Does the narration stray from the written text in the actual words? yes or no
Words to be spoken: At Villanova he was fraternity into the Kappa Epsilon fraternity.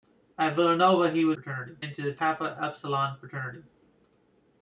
no